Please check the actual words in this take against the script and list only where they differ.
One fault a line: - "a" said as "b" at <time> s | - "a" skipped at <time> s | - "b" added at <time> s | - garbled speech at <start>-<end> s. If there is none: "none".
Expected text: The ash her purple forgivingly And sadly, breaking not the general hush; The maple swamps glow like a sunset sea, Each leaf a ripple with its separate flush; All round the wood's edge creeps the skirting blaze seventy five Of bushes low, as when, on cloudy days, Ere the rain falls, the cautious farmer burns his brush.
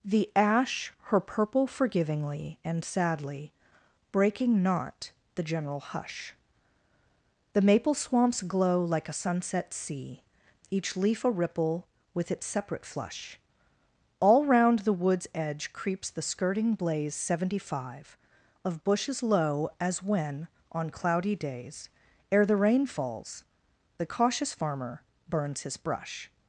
none